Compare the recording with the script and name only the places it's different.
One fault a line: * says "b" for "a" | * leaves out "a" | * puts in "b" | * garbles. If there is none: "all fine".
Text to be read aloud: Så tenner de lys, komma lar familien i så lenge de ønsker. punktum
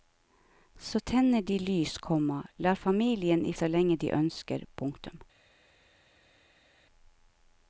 all fine